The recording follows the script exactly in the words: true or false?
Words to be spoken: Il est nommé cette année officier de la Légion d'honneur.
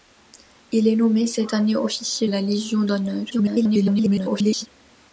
false